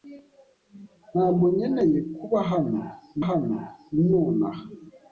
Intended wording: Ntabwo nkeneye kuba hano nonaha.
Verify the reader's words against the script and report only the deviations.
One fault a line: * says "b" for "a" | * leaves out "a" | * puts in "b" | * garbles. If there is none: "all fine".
* puts in "hano"